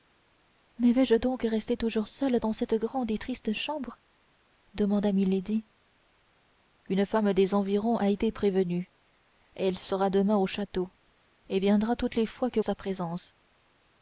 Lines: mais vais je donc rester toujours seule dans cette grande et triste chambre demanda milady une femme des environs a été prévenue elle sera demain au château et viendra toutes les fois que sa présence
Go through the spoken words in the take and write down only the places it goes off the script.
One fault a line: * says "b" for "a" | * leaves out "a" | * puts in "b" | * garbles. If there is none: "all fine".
all fine